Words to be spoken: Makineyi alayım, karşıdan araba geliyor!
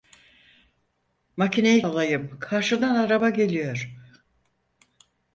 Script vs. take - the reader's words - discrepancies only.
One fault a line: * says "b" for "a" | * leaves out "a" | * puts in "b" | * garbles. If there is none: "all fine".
all fine